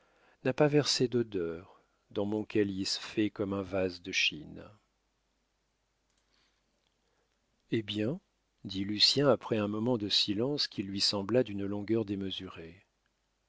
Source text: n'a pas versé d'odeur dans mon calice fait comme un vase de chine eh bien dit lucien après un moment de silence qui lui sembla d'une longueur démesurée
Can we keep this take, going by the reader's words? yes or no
yes